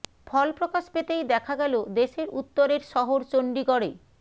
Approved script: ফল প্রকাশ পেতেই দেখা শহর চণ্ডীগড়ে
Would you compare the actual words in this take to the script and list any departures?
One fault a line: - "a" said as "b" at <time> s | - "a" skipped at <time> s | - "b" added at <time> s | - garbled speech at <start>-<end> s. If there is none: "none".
- "গেল দেশের উত্তরের" added at 1.6 s